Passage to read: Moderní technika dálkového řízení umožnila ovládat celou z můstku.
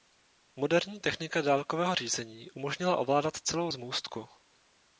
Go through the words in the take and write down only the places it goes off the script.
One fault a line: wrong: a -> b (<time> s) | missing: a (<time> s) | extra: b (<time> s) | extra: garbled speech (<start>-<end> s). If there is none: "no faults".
no faults